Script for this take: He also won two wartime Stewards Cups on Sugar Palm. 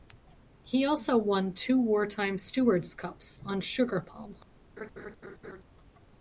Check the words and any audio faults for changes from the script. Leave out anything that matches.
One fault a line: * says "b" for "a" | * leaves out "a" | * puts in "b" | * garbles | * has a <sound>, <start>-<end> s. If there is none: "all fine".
* has a laugh, 4.8-5.6 s